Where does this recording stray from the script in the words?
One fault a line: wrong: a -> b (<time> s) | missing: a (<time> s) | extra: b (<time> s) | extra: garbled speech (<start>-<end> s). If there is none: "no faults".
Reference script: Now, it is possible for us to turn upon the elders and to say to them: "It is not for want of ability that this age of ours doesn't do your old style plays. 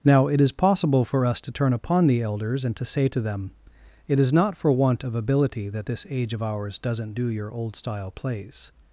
no faults